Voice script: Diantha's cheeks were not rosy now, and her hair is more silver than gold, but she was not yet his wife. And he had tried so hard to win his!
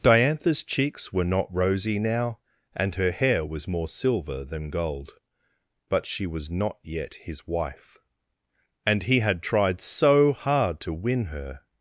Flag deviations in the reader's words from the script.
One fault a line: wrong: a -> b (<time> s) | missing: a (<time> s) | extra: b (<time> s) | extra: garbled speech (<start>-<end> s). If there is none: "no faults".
wrong: is -> was (3.4 s)
wrong: his -> her (11.2 s)